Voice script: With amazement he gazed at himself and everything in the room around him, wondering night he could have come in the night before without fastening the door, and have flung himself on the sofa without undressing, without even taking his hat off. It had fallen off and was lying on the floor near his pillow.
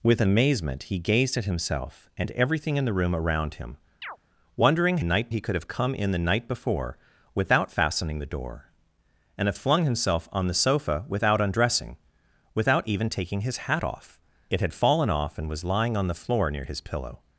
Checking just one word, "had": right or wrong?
right